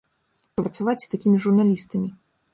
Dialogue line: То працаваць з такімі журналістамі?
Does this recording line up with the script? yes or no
yes